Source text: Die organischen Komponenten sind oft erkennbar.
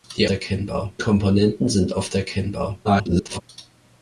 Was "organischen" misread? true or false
true